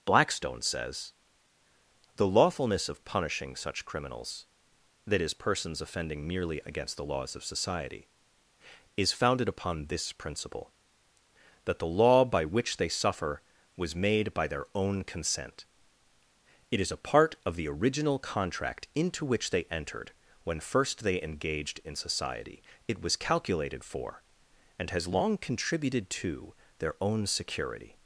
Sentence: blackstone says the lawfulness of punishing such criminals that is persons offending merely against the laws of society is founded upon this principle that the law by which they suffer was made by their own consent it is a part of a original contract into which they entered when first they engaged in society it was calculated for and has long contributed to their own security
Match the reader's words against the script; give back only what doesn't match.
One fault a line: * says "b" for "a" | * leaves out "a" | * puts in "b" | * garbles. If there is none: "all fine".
* says "the" for "a"